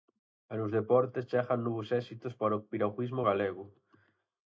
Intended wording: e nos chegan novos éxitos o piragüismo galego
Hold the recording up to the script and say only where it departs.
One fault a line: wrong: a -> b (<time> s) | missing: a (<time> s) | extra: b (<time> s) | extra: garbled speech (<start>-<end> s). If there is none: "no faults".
extra: deportes (0.8 s)
extra: para (2.4 s)